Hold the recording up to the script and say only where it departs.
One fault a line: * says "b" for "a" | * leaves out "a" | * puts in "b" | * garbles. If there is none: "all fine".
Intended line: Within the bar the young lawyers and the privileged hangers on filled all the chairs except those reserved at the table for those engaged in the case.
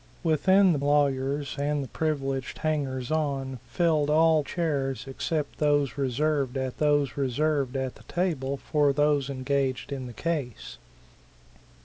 * leaves out "bar the young"
* leaves out "the"
* puts in "those reserved at"